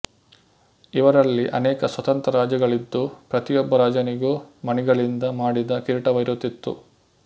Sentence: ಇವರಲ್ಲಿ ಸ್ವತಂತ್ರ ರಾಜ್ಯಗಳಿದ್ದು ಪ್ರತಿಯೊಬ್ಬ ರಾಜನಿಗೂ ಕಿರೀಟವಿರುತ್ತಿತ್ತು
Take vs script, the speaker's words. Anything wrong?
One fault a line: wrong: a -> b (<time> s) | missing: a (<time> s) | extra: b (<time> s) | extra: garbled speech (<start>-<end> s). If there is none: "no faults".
extra: ಅನೇಕ (1.5 s)
extra: ಮಣಿಗಳಿಂದ ಮಾಡಿದ (4.7 s)